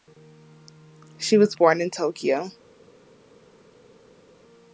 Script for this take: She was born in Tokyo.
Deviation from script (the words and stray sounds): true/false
false